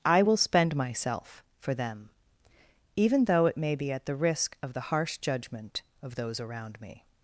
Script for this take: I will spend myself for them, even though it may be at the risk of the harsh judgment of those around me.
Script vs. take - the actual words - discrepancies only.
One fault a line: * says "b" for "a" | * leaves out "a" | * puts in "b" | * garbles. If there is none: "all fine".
all fine